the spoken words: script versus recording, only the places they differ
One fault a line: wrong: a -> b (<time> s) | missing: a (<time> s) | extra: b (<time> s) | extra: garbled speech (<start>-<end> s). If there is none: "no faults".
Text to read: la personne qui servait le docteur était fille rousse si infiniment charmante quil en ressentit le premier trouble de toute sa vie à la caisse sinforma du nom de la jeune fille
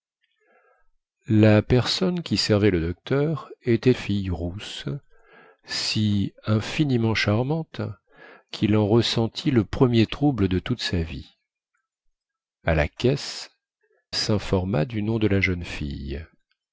no faults